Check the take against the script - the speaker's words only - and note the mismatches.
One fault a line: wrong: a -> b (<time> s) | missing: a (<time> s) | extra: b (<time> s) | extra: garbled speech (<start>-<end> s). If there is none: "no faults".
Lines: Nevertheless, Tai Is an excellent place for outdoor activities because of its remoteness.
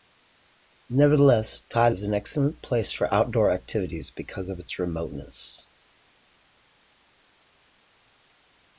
no faults